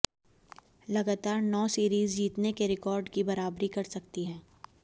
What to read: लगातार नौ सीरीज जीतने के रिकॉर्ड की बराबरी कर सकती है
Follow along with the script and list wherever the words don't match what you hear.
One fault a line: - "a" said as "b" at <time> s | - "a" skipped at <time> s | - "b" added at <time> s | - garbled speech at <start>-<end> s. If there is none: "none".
none